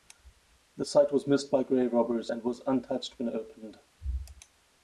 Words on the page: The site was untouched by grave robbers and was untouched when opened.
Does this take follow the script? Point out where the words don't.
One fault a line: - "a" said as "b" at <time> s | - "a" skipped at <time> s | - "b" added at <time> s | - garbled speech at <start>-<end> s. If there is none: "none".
- "untouched" said as "missed" at 1.3 s